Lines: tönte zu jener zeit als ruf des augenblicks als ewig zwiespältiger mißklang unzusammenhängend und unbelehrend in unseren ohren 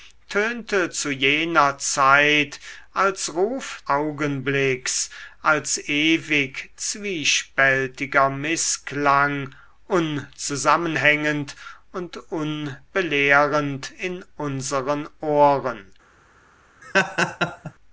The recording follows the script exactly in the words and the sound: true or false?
false